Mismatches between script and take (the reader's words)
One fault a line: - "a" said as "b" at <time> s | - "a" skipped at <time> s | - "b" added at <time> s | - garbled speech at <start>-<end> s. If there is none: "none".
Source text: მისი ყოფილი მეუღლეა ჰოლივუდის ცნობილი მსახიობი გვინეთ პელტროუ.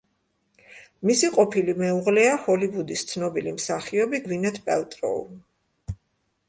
none